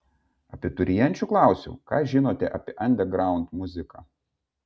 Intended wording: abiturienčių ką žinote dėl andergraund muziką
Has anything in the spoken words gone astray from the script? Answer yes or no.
yes